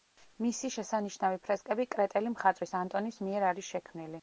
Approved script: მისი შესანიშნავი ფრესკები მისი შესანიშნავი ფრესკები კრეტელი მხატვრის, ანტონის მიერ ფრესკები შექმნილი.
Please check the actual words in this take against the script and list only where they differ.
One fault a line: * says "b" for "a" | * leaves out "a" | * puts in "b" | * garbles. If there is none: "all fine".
* leaves out "მისი შესანიშნავი ფრესკები"
* says "არის" for "ფრესკები"